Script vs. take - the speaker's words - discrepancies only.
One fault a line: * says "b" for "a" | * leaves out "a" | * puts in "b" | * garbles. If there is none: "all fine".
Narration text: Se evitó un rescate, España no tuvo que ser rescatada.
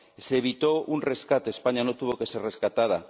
all fine